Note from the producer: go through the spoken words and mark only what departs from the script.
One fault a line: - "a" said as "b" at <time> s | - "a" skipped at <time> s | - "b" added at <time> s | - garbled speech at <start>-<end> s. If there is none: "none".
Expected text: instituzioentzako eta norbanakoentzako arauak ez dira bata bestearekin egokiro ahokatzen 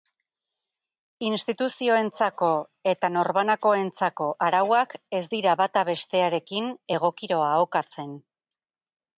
none